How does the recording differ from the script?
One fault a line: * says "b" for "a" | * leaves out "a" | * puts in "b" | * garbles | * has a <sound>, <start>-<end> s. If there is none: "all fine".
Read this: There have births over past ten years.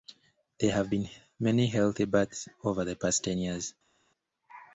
* puts in "been many healthy"
* puts in "the"